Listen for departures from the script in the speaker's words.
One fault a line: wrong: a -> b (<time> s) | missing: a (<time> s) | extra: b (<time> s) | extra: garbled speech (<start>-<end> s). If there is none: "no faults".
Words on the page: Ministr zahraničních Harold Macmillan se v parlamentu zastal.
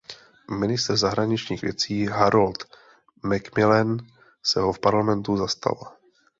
extra: věcí (1.6 s)
extra: ho (4.6 s)